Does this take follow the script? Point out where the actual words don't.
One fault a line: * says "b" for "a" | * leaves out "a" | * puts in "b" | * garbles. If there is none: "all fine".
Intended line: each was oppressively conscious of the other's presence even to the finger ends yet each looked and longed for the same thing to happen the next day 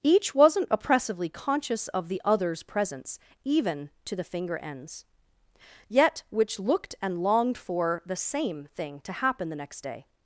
* says "wasn't" for "was"
* says "which" for "each"